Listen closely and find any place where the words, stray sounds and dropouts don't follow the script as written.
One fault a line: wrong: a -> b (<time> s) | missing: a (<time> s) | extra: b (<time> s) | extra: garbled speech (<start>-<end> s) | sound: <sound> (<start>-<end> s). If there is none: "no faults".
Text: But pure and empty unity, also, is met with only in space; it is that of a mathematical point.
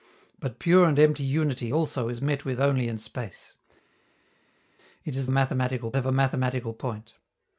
wrong: that -> mathematical (5.3 s)